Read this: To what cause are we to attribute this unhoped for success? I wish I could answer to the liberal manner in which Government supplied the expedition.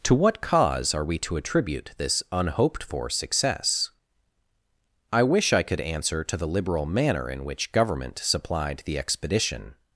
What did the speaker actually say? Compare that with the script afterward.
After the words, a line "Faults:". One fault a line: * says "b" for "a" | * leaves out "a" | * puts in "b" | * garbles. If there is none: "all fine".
To what cause are we to attribute this unhoped for success? I wish I could answer to the liberal manner in which Government supplied the expedition.
Faults:
all fine